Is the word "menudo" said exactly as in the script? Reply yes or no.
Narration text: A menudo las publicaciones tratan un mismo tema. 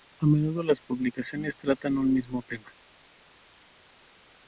yes